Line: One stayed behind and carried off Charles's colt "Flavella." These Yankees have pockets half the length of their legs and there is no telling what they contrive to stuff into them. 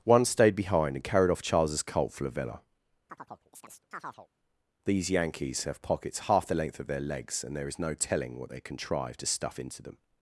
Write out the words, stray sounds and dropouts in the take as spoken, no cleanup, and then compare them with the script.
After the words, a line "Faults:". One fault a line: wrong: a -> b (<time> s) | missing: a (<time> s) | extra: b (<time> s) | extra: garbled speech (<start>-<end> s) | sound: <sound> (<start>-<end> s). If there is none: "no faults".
One stayed behind and carried off Charles's colt "Flavella." These Yankees have pockets half the length of their legs and there is no telling what they contrive to stuff into them.
Faults:
sound: chirp (3.1-4.3 s)